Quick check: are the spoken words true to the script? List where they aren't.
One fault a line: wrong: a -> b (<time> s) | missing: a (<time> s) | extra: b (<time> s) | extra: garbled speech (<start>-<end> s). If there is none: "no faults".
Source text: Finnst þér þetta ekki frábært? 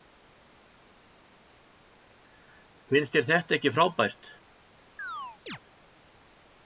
no faults